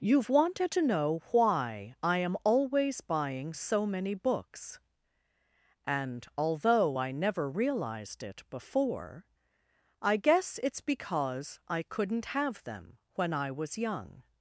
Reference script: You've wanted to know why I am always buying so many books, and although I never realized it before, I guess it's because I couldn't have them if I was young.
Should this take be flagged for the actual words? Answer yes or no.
yes